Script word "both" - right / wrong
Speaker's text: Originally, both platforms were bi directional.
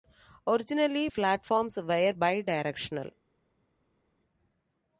wrong